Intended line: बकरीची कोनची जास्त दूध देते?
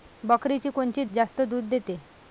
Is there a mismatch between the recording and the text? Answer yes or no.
no